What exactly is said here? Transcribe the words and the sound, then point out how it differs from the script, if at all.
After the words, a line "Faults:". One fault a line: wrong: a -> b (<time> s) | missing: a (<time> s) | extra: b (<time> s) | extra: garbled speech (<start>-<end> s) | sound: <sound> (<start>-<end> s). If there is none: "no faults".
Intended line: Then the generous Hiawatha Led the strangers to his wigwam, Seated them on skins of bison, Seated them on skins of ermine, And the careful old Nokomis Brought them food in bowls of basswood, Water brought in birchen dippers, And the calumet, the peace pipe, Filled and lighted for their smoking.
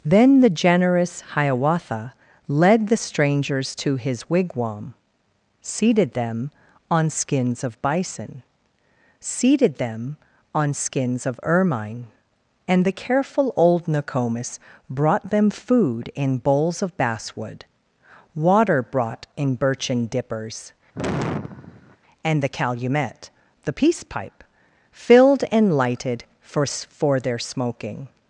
Then the generous Hiawatha Led the strangers to his wigwam, Seated them on skins of bison, Seated them on skins of ermine, And the careful old Nokomis Brought them food in bowls of basswood, Water brought in birchen dippers, And the calumet, the peace pipe, Filled and lighted for for their smoking.
Faults:
sound: sigh (20.9-22.0 s)
extra: for (26.6 s)